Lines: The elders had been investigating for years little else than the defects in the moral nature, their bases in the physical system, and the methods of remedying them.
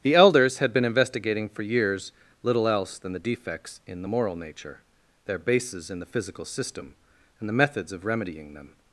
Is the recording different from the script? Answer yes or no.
no